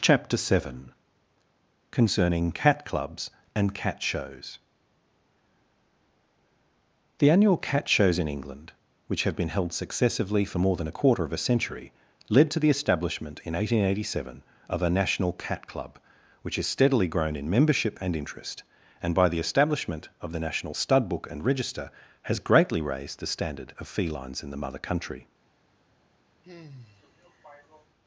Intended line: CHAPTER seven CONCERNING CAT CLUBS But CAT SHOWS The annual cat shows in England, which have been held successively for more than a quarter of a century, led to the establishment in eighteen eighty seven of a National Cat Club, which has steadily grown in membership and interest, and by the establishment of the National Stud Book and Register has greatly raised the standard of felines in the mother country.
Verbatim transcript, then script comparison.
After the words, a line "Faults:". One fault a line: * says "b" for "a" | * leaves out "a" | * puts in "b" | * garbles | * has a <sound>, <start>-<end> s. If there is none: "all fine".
CHAPTER seven CONCERNING CAT CLUBS AND CAT SHOWS The annual cat shows in England, which have been held successively for more than a quarter of a century, led to the establishment in eighteen eighty seven of a National Cat Club, which has steadily grown in membership and interest, and by the establishment of the National Stud Book and Register has greatly raised the standard of felines in the mother country.
Faults:
* says "AND" for "But"
* has a sigh, 26.4-27.9 s